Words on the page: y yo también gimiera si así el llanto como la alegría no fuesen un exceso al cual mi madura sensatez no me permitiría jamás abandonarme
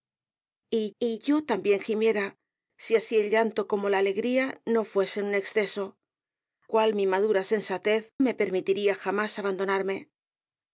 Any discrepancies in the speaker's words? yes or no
yes